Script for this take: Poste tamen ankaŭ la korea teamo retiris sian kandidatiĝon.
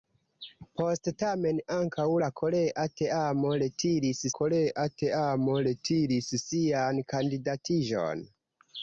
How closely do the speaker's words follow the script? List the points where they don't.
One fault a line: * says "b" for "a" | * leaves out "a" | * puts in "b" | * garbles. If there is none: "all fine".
* puts in "korea teamo retiris"